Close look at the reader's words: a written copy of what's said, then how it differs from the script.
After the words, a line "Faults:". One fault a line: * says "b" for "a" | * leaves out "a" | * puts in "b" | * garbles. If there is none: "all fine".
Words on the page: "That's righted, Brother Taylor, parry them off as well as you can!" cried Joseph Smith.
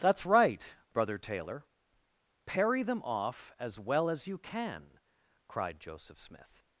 "That's right, Brother Taylor, parry them off as well as you can!" cried Joseph Smith.
Faults:
* says "right" for "righted"